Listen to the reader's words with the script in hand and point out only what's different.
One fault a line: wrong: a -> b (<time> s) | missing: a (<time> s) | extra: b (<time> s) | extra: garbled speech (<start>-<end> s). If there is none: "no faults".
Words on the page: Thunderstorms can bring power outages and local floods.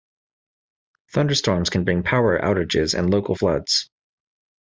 no faults